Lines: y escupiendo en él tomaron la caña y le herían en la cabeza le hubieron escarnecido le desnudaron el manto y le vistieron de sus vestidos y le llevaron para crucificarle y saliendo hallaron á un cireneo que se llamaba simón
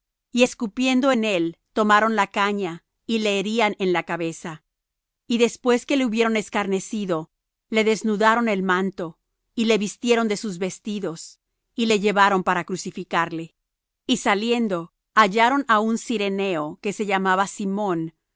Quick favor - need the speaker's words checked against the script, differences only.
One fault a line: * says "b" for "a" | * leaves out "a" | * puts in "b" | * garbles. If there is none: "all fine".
* puts in "y después que"